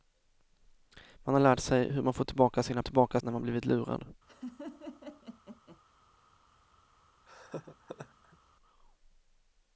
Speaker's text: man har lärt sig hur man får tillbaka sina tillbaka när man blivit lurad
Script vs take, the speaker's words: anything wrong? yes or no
no